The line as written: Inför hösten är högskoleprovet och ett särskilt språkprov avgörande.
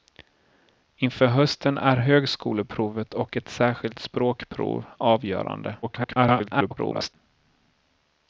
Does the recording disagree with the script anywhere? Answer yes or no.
yes